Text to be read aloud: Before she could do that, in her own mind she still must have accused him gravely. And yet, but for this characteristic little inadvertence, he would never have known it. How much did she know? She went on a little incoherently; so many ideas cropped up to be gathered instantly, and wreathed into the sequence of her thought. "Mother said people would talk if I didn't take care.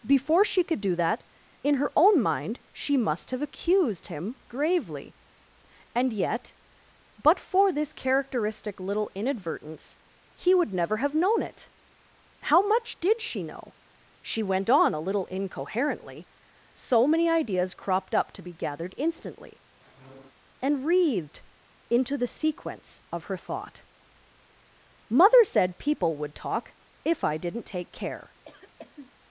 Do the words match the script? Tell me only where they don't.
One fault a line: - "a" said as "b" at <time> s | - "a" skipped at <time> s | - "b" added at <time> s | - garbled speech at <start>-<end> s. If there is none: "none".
- "still" skipped at 3.0 s